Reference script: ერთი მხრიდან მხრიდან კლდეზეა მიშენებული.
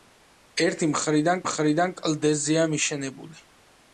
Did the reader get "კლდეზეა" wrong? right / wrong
right